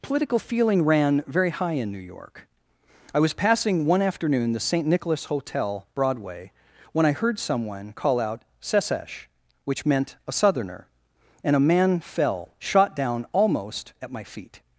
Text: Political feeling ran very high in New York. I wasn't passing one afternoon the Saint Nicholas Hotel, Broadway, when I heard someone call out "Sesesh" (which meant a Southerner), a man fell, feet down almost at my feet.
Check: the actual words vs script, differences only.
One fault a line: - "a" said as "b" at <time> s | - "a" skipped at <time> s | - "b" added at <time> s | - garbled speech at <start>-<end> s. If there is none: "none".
- "wasn't" said as "was" at 3.2 s
- "and" added at 11.4 s
- "feet" said as "shot" at 12.6 s